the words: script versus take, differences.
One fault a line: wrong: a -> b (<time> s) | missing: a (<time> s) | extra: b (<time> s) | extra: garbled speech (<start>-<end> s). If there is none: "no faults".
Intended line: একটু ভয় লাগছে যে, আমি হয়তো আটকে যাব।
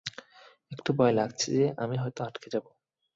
no faults